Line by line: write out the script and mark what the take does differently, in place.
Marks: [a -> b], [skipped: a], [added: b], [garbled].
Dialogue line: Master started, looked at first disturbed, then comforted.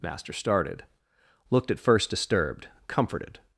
Master started, looked at first disturbed, [skipped: then] comforted.